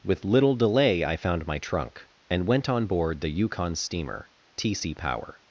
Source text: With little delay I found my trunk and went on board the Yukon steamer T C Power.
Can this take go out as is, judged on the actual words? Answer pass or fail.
pass